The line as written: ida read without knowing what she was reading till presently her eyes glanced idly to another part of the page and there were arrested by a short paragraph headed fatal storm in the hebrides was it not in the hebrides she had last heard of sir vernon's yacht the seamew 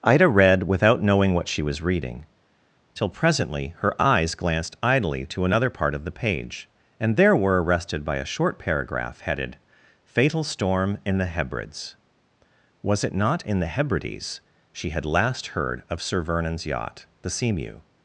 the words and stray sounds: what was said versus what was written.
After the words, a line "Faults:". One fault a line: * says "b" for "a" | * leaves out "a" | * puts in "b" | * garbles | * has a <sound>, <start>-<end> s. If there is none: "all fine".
ida read without knowing what she was reading till presently her eyes glanced idly to another part of the page and there were arrested by a short paragraph headed fatal storm in the hebrides was it not in the hebrides she had last heard of sir vernon's yacht the seamew
Faults:
all fine